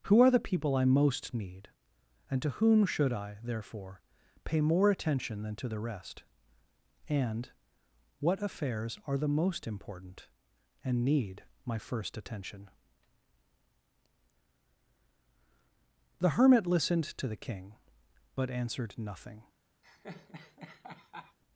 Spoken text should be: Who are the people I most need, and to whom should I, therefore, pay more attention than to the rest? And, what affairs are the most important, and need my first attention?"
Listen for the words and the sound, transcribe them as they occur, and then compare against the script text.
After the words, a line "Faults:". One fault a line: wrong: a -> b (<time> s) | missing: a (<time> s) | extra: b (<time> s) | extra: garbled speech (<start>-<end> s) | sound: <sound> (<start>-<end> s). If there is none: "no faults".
Who are the people I most need, and to whom should I, therefore, pay more attention than to the rest? And, what affairs are the most important, and need my first attention?" The hermit listened to the King, but answered nothing
Faults:
extra: The hermit listened to the King but answered nothing (16.2 s)
sound: laugh (19.8-21.4 s)